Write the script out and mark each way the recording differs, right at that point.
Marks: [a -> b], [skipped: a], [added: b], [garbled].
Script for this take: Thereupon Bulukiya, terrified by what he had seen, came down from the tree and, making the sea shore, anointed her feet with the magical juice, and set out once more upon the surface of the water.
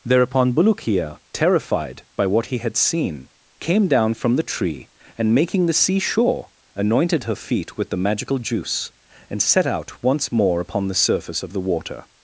Thereupon Bulukiya, terrified by what he had seen, came down from the tree and, making the sea shore, anointed her feet with the magical juice, and set out once more upon the surface of the water.